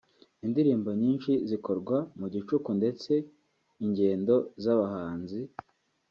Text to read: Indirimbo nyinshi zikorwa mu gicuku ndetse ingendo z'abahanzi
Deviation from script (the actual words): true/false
false